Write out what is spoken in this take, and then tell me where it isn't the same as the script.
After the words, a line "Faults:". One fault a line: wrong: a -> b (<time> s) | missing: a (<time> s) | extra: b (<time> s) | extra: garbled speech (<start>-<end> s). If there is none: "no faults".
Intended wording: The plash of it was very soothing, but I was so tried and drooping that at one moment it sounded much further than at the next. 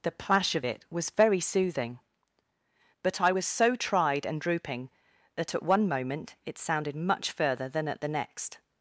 The plash of it was very soothing, but I was so tried and drooping that at one moment it sounded much further than at the next.
Faults:
no faults